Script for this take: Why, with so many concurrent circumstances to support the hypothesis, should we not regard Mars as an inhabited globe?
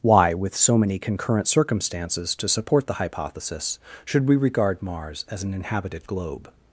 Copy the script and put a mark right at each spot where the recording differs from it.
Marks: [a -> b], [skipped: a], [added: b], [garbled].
Why, with so many concurrent circumstances to support the hypothesis, should we [skipped: not] regard Mars as an inhabited globe?